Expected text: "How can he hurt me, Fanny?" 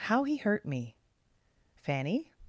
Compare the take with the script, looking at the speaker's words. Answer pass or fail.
fail